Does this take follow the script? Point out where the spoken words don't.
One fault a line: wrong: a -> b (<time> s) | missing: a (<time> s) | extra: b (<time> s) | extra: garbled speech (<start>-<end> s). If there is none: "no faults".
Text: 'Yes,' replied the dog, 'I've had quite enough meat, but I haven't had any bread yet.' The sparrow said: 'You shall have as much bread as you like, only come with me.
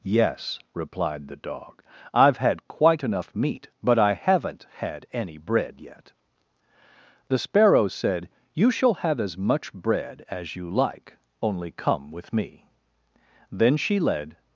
extra: Then she led (13.5 s)